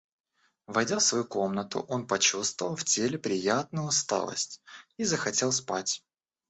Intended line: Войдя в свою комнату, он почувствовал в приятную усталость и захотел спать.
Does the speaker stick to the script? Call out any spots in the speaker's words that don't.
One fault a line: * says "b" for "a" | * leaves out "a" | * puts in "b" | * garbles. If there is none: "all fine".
* puts in "теле"